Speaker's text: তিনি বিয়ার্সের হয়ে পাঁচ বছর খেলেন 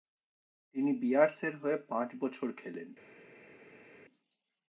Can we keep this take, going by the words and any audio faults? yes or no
yes